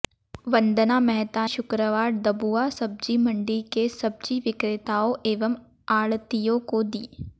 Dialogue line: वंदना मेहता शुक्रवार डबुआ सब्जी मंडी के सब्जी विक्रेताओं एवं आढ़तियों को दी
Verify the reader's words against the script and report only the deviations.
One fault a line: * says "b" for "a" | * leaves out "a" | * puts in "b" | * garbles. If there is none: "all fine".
all fine